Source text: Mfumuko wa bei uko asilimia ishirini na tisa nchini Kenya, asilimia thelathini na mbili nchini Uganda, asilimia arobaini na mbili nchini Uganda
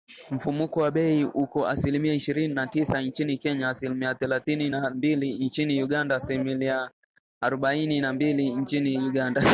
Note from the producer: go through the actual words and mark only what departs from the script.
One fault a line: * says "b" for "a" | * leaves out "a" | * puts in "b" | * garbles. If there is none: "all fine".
all fine